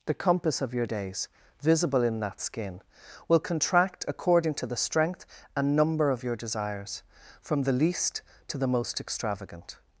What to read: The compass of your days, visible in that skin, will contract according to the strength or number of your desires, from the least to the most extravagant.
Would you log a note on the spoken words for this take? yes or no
yes